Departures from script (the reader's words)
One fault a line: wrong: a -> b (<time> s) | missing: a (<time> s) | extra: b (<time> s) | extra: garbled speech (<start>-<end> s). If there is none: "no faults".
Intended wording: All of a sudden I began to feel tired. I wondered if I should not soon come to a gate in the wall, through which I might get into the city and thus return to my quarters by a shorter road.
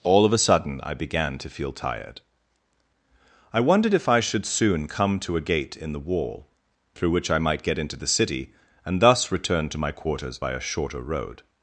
missing: not (4.5 s)